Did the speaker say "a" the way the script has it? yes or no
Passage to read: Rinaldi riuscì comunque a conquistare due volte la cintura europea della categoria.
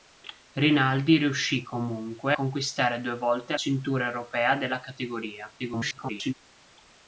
no